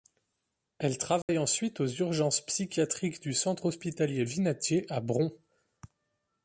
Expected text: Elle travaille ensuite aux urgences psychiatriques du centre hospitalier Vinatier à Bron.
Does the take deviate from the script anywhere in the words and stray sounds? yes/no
yes